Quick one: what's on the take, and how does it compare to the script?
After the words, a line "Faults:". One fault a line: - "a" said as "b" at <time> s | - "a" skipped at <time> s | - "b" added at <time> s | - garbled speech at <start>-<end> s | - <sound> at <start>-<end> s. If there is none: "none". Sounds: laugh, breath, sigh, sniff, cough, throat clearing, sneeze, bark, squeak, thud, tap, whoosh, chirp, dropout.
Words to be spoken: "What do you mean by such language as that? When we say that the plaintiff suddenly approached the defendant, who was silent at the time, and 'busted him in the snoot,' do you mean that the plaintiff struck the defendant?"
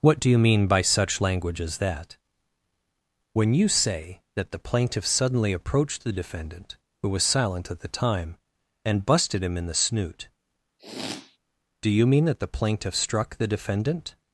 "What do you mean by such language as that? When you say that the plaintiff suddenly approached the defendant, who was silent at the time, and 'busted him in the snoot,' do you mean that the plaintiff struck the defendant?"
Faults:
- "we" said as "you" at 3.5 s
- sniff at 10.8-11.4 s